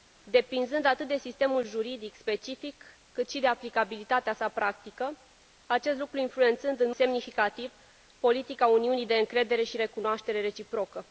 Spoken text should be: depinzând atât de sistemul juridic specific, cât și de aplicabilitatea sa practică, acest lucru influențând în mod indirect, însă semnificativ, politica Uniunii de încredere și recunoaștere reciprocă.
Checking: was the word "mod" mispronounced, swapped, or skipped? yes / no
yes